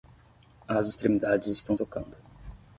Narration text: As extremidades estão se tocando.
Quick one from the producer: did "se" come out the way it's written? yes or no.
no